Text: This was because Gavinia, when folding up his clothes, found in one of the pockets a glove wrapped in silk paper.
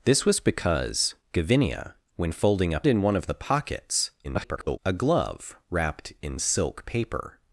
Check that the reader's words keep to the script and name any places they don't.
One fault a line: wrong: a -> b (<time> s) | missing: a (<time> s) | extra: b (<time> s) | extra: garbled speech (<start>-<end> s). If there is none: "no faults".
missing: his clothes found (2.9 s)
extra: garbled speech (4.2-4.8 s)